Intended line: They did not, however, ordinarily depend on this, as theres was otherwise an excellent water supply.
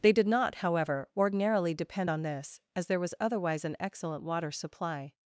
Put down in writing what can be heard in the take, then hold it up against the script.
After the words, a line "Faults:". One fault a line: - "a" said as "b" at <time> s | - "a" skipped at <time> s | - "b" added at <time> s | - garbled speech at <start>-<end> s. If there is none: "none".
They did not, however, ordinarily depend on this, as there was otherwise an excellent water supply.
Faults:
- "theres" said as "there" at 2.9 s